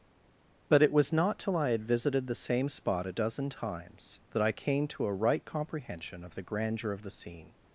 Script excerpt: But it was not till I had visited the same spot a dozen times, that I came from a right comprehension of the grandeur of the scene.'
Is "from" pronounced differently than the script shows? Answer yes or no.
yes